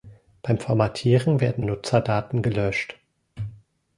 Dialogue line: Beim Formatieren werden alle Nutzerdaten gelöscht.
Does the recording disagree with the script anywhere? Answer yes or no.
yes